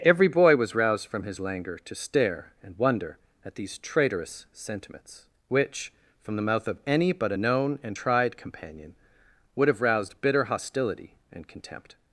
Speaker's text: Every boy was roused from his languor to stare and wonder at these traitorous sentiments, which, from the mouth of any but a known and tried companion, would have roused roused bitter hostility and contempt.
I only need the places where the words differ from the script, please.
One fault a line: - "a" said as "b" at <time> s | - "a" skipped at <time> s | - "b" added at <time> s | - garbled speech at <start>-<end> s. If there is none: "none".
- "roused" skipped at 10.2 s